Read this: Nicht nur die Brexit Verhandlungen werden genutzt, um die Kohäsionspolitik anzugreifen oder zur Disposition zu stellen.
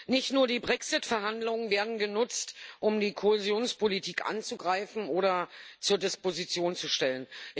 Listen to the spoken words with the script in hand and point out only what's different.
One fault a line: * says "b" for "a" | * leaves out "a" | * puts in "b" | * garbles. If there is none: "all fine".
all fine